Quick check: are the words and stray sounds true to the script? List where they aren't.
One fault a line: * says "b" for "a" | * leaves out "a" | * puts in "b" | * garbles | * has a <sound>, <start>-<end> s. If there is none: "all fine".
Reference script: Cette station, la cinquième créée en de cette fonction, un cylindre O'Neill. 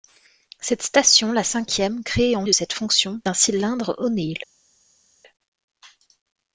all fine